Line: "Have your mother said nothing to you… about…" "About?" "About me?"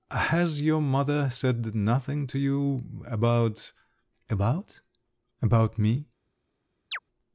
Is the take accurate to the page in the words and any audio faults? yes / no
no